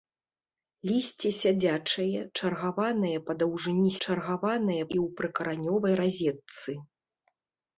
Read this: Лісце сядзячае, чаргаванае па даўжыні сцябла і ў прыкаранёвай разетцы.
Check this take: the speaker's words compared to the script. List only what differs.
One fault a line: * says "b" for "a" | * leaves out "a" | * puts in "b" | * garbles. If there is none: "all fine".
* says "чаргаванае" for "сцябла"